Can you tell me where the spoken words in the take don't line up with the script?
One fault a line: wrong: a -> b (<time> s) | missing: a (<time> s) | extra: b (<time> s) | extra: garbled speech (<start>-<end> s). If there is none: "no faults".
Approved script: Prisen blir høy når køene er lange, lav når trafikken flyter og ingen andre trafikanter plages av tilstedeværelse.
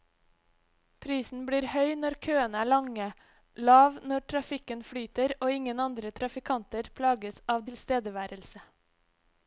no faults